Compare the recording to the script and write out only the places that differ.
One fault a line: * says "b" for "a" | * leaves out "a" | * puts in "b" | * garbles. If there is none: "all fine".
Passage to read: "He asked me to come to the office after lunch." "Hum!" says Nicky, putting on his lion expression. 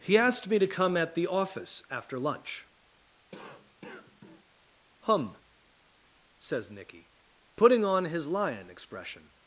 * says "at" for "to"